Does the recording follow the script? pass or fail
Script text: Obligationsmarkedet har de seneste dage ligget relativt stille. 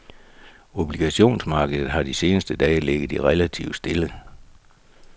pass